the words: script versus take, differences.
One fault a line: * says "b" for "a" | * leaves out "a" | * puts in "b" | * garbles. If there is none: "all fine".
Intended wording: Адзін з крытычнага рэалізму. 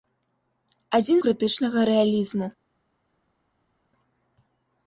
all fine